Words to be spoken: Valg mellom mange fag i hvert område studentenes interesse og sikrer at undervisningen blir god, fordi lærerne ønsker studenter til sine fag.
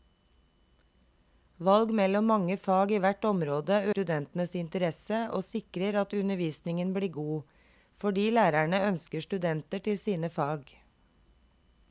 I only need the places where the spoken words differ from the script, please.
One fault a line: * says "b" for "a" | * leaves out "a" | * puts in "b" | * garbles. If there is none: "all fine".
all fine